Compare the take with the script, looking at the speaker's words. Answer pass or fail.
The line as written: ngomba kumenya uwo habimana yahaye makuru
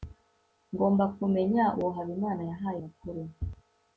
pass